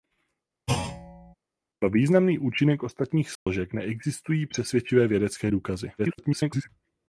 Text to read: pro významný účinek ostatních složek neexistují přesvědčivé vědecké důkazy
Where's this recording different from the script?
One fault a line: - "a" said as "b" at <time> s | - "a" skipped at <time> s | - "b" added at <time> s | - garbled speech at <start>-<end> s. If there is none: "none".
- garbled speech at 6.0-6.7 s